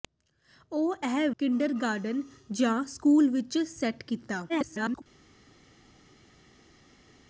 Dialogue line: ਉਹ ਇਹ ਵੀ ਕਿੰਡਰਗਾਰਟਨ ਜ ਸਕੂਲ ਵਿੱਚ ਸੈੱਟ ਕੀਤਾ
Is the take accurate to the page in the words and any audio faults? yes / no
no